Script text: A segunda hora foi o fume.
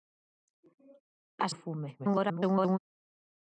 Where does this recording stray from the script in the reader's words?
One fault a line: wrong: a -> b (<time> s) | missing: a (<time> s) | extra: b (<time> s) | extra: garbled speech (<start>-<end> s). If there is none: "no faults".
missing: segunda hora foi (1.5 s)
extra: garbled speech (2.0-2.8 s)